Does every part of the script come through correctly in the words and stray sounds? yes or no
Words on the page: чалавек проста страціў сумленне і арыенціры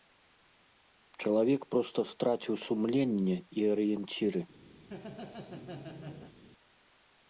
no